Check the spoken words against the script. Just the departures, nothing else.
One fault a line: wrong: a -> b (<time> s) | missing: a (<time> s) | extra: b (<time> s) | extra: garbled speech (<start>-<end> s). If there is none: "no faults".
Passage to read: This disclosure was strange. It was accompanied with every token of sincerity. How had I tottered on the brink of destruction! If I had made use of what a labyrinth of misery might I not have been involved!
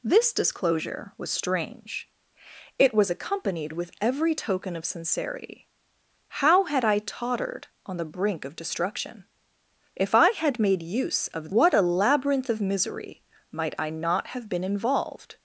no faults